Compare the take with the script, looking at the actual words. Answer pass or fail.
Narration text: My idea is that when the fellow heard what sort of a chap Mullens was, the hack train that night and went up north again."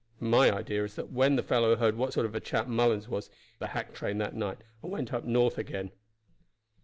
pass